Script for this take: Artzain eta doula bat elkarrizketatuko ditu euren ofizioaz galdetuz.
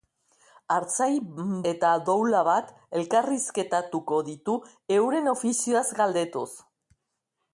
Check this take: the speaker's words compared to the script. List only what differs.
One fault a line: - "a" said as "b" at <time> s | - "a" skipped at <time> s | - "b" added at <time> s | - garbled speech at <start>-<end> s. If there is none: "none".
none